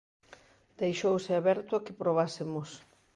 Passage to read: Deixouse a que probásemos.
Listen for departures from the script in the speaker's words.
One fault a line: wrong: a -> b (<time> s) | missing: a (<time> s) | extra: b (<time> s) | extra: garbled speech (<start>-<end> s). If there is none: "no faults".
extra: aberto (1.4 s)